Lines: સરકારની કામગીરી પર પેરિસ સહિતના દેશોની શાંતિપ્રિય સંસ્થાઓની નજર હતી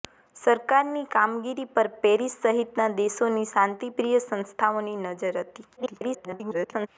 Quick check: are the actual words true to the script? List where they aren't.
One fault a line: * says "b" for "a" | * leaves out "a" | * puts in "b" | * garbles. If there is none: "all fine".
* garbles